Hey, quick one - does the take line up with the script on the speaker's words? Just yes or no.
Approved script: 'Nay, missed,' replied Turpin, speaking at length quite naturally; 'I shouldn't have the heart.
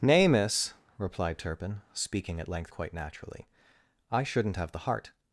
no